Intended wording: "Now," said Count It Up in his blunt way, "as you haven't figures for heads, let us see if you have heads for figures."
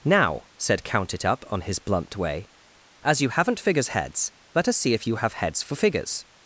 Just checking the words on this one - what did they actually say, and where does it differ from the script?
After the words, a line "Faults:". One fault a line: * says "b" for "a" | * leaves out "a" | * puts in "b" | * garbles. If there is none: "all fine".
"Now," said Count It Up on his blunt way, "as you haven't figures heads, let us see if you have heads for figures."
Faults:
* says "on" for "in"
* leaves out "for"